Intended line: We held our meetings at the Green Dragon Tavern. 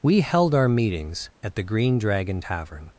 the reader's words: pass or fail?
pass